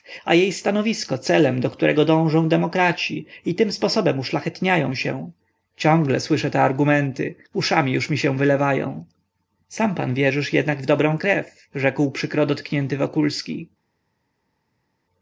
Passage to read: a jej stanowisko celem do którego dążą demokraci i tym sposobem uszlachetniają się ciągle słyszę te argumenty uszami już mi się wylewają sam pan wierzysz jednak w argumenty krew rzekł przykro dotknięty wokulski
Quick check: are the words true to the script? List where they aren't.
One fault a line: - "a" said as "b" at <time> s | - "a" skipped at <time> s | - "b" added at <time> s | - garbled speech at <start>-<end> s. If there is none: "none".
- "argumenty" said as "dobrą" at 10.8 s